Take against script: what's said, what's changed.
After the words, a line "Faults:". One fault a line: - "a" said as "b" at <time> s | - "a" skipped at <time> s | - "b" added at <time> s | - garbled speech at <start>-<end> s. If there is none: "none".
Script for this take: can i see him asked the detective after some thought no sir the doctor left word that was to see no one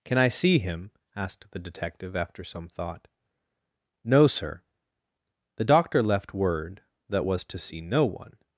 can i see him asked the detective after some thought no sir the doctor left word that was to see no one
Faults:
none